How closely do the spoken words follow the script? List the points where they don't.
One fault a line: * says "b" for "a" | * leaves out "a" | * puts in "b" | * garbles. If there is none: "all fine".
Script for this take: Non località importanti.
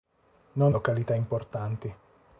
all fine